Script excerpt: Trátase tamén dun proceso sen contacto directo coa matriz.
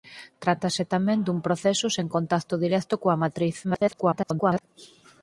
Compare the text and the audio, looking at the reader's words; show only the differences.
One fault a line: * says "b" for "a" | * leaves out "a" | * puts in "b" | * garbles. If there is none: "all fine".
* garbles